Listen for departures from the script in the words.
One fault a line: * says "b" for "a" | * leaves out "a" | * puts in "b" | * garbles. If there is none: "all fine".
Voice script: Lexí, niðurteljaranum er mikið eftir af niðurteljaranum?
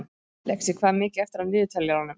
* says "hvað" for "niðurteljaranum"